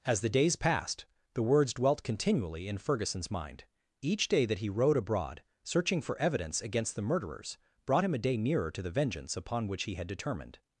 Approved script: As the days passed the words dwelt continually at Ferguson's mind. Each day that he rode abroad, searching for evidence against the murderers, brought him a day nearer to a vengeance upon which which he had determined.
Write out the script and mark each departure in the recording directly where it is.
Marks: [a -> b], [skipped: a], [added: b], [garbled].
As the days passed the words dwelt continually [at -> in] Ferguson's mind. Each day that he rode abroad, searching for evidence against the murderers, brought him a day nearer to [a -> the] vengeance upon which [skipped: which] he had determined.